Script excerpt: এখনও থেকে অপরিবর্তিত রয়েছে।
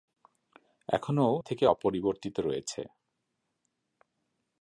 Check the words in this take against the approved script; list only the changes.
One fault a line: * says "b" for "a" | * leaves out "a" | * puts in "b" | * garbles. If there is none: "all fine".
all fine